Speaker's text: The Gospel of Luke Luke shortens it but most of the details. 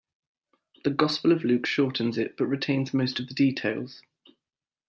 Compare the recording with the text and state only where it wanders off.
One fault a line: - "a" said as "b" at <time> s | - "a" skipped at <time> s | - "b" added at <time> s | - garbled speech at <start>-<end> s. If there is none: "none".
- "Luke" skipped at 1.7 s
- "retains" added at 2.4 s